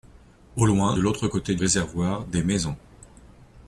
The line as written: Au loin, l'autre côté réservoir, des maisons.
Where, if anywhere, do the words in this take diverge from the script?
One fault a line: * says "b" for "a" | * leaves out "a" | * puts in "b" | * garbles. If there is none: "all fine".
all fine